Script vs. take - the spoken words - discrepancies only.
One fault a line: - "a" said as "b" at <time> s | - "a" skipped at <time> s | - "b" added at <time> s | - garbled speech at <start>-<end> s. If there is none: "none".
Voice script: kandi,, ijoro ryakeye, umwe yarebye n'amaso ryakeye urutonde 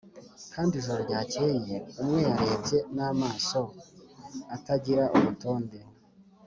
- "ryakeye" said as "atagira" at 4.5 s